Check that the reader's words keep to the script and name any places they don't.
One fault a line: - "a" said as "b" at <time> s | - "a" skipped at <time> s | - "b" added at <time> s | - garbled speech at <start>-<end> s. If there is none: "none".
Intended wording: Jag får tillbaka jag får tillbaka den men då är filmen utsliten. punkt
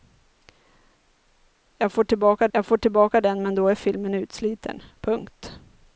none